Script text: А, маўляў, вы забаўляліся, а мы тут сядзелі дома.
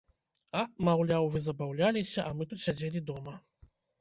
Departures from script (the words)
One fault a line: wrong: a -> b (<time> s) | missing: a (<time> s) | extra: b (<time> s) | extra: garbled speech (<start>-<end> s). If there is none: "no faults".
no faults